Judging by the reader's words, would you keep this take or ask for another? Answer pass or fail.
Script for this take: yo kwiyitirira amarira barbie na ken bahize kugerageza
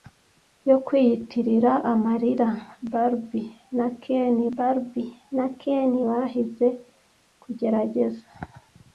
fail